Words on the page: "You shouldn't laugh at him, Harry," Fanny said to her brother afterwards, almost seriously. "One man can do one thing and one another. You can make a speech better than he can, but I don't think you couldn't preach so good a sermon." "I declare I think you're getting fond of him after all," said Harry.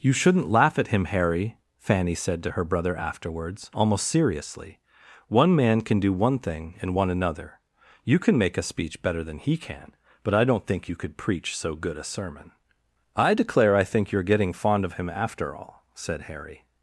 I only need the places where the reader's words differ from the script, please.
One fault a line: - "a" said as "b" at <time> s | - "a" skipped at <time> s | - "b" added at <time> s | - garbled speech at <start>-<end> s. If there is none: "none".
- "couldn't" said as "could" at 10.9 s